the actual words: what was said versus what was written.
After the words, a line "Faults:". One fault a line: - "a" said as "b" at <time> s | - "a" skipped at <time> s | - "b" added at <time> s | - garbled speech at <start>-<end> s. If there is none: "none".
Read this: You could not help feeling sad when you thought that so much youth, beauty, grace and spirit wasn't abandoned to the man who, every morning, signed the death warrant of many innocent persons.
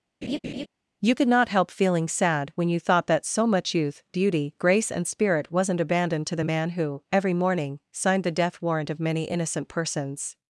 You could not help feeling sad when you thought that so much youth, beauty, grace and spirit wasn't abandoned to the man who, every morning, signed the death warrant of many innocent persons.
Faults:
none